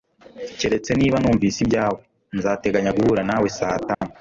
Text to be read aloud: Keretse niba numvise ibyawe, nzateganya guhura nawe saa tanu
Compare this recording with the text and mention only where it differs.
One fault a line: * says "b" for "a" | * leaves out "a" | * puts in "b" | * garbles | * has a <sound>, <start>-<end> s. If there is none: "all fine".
* has a dropout, 3.9-4.0 s